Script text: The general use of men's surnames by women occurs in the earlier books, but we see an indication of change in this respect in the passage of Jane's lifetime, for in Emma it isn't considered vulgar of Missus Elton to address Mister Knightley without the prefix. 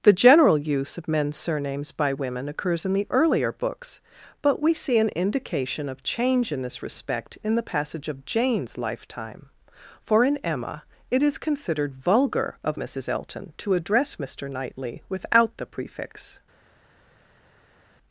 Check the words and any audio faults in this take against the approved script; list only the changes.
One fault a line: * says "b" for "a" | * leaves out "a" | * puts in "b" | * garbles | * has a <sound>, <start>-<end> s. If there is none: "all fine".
* says "is" for "isn't"